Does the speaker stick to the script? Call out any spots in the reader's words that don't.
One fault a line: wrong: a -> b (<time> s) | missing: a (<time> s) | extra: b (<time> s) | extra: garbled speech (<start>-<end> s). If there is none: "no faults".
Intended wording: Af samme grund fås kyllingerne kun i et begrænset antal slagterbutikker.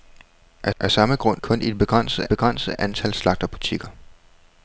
extra: af (0.8 s)
missing: fås kyllingerne (1.4 s)
extra: begrænset (2.3 s)